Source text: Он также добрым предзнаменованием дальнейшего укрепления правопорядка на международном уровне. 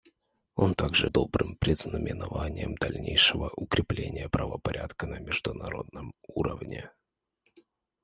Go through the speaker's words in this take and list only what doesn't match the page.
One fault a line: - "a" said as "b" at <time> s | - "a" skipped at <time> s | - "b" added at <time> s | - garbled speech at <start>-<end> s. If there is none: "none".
none